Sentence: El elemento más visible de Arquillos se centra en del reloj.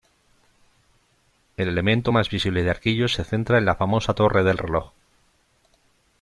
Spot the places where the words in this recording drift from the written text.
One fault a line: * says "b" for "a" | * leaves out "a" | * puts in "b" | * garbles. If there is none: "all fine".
* puts in "la famosa Torre"